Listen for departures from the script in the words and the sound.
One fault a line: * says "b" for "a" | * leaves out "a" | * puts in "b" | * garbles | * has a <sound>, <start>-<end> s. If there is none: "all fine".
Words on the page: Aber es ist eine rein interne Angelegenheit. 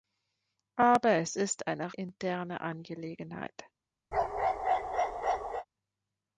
* leaves out "rein"
* has a bark, 4.1-5.7 s